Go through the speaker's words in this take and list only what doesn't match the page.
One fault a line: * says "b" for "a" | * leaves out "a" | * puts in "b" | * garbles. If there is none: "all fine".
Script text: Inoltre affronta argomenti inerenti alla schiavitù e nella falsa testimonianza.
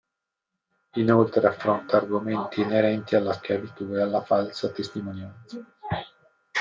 * says "alla" for "nella"